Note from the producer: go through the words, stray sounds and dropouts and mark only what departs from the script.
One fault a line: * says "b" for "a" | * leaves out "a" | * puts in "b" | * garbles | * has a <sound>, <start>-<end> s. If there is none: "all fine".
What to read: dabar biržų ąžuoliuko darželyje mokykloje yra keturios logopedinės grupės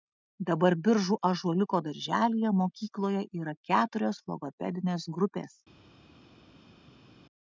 all fine